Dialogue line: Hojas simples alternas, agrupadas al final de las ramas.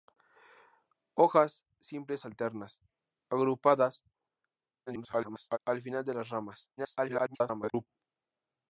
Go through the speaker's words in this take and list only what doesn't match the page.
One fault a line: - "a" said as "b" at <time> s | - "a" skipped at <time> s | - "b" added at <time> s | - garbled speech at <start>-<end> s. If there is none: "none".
- garbled speech at 4.9-5.6 s
- garbled speech at 6.8-7.9 s